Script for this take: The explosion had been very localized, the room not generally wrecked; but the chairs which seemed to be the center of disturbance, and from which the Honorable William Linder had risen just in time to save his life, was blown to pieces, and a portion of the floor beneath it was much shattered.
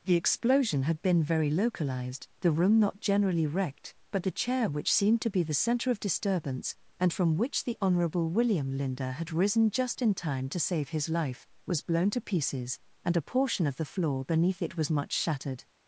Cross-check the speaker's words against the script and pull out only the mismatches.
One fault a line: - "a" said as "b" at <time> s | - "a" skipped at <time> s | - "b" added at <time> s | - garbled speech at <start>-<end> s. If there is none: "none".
- "chairs" said as "chair" at 4.3 s